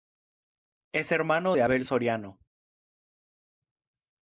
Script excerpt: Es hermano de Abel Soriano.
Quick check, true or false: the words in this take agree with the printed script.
true